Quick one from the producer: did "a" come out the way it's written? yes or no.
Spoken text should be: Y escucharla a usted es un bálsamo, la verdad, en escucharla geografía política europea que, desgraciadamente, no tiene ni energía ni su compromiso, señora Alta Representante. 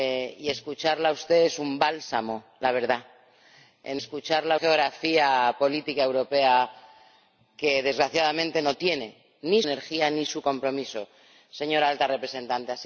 yes